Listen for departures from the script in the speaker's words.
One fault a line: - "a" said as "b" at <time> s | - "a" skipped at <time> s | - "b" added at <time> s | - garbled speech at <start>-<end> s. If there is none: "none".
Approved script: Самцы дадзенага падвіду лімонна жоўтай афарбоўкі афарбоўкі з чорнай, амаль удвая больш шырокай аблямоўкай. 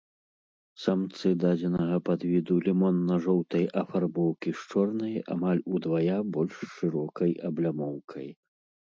- "афарбоўкі" skipped at 4.5 s